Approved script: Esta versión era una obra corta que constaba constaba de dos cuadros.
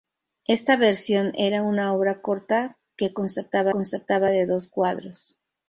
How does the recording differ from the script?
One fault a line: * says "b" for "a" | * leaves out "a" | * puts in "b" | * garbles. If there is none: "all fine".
all fine